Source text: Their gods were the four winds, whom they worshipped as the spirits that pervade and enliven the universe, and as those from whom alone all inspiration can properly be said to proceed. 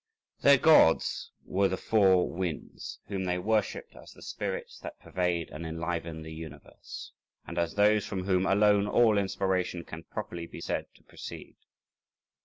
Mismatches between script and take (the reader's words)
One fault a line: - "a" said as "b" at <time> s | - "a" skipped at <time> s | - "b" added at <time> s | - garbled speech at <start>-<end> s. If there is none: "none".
none